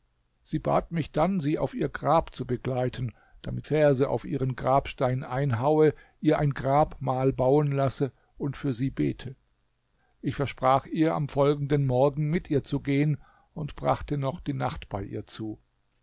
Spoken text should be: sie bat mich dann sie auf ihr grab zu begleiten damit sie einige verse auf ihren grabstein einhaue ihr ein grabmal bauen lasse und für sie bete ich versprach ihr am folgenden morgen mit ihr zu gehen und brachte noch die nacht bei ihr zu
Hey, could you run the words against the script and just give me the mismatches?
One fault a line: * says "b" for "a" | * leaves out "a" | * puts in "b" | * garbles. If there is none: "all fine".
* leaves out "sie einige"